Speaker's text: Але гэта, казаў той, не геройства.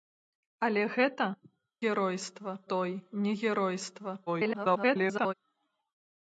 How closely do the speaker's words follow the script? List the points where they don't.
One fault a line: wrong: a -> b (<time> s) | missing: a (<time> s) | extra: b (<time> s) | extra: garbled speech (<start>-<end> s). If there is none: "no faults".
wrong: казаў -> геройства (1.9 s)
extra: garbled speech (4.3-5.3 s)